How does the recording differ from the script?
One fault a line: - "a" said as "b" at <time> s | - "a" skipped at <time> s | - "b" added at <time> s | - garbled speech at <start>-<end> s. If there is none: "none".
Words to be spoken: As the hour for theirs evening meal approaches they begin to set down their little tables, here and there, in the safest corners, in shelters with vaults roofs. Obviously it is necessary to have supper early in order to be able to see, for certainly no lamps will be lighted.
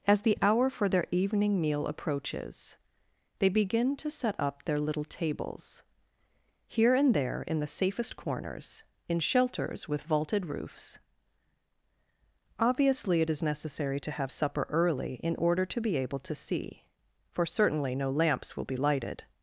- "theirs" said as "their" at 0.9 s
- "down" said as "up" at 4.4 s
- "vaults" said as "vaulted" at 10.0 s